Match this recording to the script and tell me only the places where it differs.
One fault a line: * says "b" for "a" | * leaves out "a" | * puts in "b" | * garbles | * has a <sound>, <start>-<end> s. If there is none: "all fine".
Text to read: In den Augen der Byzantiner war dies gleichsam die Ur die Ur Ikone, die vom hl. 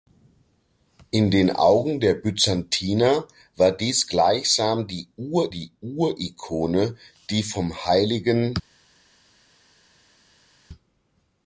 all fine